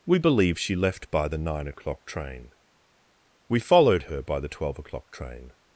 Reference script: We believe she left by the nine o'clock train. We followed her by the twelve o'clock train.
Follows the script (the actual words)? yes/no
yes